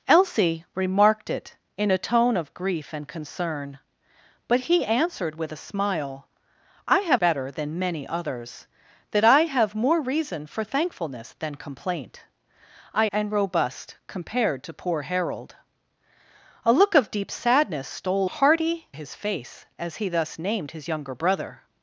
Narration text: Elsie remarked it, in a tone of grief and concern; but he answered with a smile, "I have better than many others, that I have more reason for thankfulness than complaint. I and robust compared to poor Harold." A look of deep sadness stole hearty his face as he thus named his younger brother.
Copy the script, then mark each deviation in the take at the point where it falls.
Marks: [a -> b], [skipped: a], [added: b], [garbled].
Elsie remarked it, in a tone of grief and concern; but he answered with a smile, "I have better than many others, that I have more reason for thankfulness than complaint. I and robust compared to poor Harold." A look of deep sadness stole hearty his face as he thus named his younger brother.